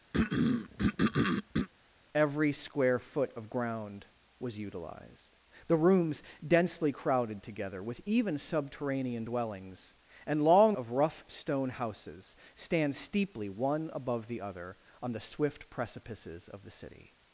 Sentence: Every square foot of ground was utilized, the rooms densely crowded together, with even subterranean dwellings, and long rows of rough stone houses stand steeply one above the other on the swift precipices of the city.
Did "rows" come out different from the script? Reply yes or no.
yes